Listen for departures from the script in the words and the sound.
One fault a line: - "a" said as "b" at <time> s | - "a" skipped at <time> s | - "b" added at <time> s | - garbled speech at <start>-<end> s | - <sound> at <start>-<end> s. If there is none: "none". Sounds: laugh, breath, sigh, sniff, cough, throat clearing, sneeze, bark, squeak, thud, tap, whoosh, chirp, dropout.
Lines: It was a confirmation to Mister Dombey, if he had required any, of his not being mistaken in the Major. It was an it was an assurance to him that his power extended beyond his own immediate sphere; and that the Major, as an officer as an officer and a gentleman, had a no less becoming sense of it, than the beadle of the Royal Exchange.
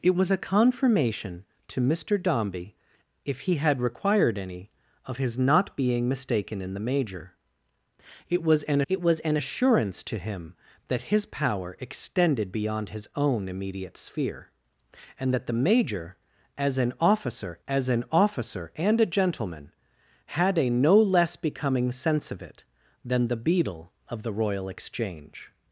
none